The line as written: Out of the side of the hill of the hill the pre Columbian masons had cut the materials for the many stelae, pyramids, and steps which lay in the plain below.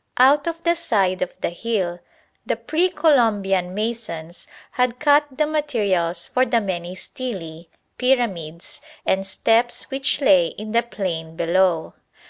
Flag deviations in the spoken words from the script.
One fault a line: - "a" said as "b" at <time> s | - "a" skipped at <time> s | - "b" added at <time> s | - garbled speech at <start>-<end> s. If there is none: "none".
- "of the hill" skipped at 2.0 s